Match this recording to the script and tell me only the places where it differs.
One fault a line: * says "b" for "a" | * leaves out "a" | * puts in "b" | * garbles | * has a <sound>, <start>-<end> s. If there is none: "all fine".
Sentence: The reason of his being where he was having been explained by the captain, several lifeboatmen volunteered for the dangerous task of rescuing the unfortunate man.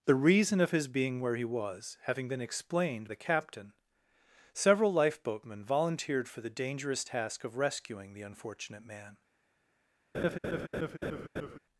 * leaves out "by"
* has a laugh, 10.1-11.6 s